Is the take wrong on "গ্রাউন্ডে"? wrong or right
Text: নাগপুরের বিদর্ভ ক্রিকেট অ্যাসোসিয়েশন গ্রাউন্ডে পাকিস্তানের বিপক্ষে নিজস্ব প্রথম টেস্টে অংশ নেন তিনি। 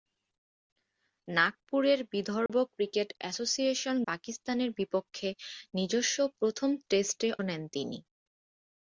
wrong